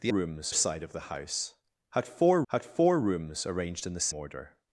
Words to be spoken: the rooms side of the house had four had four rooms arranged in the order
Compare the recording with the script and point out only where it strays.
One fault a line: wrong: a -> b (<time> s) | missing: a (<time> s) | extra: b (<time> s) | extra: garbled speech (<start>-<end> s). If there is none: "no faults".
no faults